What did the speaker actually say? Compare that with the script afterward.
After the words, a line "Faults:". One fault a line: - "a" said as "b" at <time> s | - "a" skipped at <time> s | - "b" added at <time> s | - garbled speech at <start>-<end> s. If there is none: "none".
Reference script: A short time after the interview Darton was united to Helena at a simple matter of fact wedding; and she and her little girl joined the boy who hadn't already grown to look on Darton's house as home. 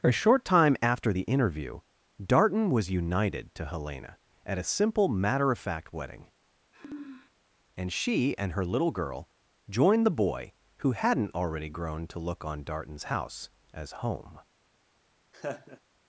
A short time after the interview Darton was united to Helena at a simple matter of fact wedding; and she and her little girl joined the boy who hadn't already grown to look on Darton's house as home.
Faults:
none